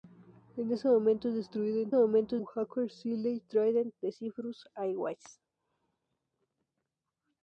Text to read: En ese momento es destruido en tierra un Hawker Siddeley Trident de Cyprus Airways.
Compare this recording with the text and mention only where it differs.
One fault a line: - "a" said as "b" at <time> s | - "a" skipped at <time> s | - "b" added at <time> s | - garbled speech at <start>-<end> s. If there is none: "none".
- "tierra" said as "momento" at 1.9 s